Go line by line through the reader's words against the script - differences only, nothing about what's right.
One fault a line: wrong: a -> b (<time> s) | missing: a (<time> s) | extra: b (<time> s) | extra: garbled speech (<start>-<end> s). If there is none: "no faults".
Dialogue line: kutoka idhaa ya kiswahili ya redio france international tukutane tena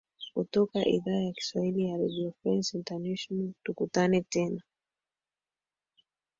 no faults